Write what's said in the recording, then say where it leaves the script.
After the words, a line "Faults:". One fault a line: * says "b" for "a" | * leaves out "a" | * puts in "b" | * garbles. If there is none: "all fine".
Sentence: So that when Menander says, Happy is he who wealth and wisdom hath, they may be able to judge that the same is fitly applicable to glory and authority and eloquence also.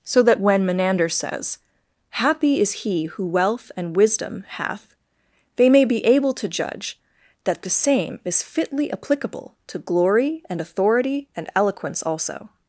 So that when Menander says, Happy is he who wealth and wisdom hath, they may be able to judge that the same is fitly applicable to glory and authority and eloquence also.
Faults:
all fine